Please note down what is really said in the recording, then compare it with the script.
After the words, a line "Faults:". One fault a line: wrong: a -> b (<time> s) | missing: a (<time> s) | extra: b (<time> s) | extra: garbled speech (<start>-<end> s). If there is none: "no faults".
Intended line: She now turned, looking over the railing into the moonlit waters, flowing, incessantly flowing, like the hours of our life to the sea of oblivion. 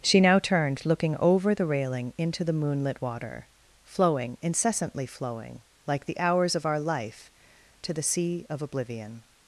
She now turned, looking over the railing into the moonlit water, flowing, incessantly flowing, like the hours of our life to the sea of oblivion.
Faults:
wrong: waters -> water (3.0 s)